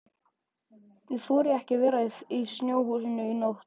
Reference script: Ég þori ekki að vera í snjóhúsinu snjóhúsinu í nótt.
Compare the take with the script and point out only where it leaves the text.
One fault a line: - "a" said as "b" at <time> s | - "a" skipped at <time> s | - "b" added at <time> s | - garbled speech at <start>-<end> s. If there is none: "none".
- "snjóhúsinu" skipped at 3.3 s